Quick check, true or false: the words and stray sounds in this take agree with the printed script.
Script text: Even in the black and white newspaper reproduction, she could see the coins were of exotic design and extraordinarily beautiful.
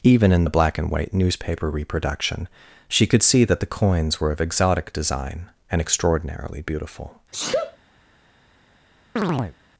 false